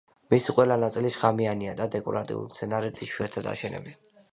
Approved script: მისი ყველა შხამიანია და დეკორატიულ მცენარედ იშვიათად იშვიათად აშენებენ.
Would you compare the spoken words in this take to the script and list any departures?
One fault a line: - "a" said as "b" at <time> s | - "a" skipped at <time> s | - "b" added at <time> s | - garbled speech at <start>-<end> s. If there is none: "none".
- "ნაწილი" added at 0.8 s
- "იშვიათად" skipped at 3.6 s